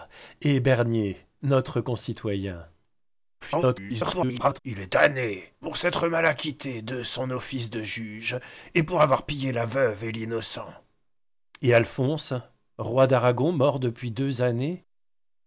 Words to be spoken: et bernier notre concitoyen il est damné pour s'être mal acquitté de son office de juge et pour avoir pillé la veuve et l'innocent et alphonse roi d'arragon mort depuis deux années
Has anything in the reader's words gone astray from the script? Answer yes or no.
yes